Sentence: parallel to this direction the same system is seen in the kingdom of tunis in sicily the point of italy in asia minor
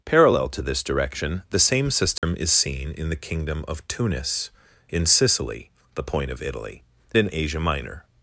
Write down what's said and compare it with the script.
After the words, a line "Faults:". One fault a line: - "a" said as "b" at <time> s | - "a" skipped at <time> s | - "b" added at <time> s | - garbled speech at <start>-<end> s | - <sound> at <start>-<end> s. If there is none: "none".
parallel to this direction the same system is seen in the kingdom of tunis in sicily the point of italy in asia minor
Faults:
- dropout at 2.2-2.2 s